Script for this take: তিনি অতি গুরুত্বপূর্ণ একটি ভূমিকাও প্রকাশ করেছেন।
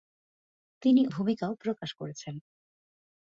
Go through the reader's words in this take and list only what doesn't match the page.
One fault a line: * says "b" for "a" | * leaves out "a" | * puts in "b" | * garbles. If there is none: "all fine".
* leaves out "অতি গুরুত্বপূর্ণ একটি"